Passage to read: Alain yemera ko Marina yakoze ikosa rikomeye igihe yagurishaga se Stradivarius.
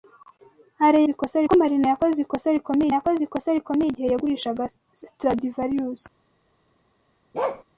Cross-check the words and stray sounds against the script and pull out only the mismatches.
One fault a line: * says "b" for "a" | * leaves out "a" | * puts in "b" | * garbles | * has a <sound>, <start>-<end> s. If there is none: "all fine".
* says "ikosa" for "yemera"
* puts in "yakoze ikosa rikomeye"
* leaves out "se"
* has a bark, 7.3-7.6 s